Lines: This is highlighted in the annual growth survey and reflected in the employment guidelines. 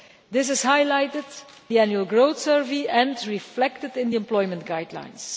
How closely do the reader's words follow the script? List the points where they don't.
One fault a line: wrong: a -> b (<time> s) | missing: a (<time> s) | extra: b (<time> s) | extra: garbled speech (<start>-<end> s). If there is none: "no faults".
missing: in (1.2 s)